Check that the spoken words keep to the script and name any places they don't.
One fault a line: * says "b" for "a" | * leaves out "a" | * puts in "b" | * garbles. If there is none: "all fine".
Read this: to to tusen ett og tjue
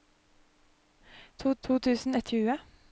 all fine